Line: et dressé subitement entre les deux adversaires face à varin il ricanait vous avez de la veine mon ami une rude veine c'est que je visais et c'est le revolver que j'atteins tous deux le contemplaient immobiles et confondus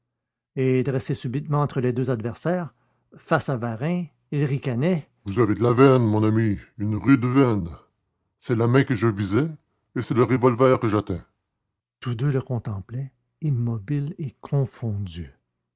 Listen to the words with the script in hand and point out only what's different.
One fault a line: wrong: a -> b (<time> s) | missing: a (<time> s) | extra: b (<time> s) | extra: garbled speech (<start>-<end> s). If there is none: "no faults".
extra: la main (8.5 s)